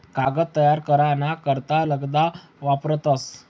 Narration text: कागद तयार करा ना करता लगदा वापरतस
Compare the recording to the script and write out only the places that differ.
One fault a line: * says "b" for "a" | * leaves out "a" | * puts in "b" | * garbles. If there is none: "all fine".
all fine